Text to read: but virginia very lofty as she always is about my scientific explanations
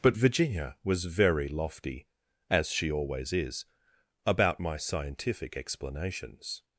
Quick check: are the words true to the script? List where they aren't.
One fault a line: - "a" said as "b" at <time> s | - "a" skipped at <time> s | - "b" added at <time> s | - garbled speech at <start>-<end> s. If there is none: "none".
- "was" added at 0.8 s